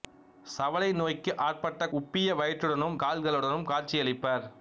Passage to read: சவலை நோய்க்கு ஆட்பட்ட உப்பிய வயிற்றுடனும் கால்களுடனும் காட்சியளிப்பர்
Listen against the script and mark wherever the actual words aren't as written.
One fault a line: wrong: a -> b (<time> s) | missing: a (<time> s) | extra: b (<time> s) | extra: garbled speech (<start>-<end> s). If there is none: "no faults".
no faults